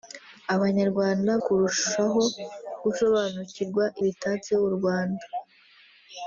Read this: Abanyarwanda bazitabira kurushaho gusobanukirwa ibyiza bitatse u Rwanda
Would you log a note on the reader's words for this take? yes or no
yes